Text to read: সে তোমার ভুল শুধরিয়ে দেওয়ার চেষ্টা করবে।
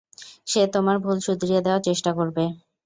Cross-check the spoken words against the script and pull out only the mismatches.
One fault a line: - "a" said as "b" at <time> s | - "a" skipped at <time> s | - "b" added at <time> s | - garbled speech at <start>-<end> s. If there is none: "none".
none